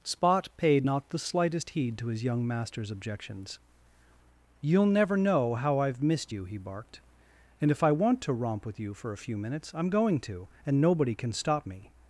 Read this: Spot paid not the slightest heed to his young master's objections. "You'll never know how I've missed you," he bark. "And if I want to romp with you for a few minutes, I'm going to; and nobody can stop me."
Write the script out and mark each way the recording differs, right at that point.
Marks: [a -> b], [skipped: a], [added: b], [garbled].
Spot paid not the slightest heed to his young master's objections. "You'll never know how I've missed you," he [bark. -> barked] "And if I want to romp with you for a few minutes, I'm going to; and nobody can stop me."